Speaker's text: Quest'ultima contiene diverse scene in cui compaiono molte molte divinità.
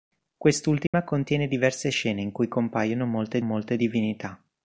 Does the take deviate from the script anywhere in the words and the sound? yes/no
yes